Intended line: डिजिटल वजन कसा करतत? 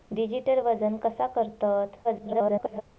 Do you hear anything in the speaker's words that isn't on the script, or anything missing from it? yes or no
yes